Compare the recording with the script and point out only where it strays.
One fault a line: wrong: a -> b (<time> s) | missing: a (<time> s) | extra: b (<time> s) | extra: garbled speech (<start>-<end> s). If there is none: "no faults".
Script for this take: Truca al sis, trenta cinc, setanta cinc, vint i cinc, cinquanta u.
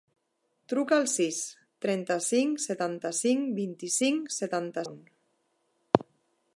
wrong: cinquanta -> setanta (4.4 s)